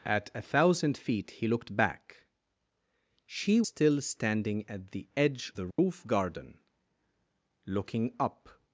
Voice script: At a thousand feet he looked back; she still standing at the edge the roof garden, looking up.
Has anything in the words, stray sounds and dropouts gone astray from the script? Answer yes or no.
yes